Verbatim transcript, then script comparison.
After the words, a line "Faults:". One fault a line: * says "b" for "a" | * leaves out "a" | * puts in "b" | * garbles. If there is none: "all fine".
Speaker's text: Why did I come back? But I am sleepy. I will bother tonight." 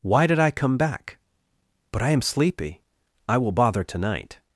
Why did I come back? But I am sleepy. I will bother tonight."
Faults:
all fine